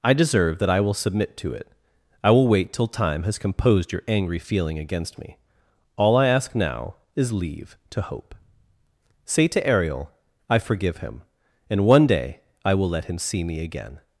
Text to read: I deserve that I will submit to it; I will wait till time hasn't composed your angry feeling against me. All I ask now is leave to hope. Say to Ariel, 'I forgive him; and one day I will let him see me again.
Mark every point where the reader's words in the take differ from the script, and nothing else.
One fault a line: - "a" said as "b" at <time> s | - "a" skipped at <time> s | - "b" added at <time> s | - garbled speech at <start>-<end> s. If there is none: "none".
- "hasn't" said as "has" at 3.2 s